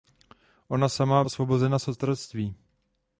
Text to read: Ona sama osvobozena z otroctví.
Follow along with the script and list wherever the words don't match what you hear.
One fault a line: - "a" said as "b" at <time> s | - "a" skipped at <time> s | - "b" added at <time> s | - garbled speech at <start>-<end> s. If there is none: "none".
none